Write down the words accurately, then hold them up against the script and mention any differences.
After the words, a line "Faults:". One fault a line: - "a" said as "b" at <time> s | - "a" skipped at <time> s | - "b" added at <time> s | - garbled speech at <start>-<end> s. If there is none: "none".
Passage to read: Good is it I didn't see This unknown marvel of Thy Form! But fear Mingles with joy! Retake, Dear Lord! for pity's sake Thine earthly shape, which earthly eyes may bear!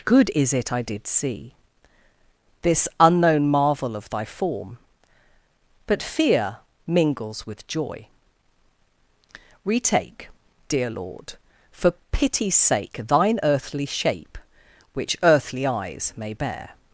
Good is it I did see This unknown marvel of Thy Form! But fear Mingles with joy! Retake, Dear Lord! for pity's sake Thine earthly shape, which earthly eyes may bear!
Faults:
- "didn't" said as "did" at 0.8 s